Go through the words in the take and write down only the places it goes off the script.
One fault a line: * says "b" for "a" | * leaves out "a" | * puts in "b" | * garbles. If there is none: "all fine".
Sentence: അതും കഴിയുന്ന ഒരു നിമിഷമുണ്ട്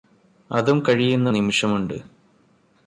* leaves out "ഒരു"